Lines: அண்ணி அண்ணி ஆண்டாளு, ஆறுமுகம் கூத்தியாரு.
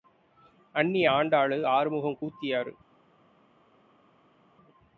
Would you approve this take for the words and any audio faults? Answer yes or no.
no